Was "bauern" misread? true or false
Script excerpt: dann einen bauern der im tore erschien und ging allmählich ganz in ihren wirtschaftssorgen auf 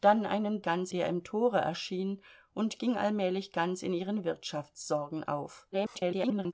true